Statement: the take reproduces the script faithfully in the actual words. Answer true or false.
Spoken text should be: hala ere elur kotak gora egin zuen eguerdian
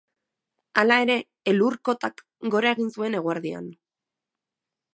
true